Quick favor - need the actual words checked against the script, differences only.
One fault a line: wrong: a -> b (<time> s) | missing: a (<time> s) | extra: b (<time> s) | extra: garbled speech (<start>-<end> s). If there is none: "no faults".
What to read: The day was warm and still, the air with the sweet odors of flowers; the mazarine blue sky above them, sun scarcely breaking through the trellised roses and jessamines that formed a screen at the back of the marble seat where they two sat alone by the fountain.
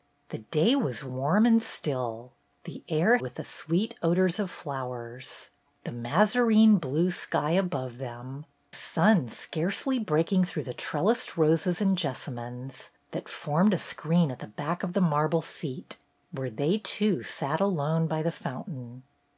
no faults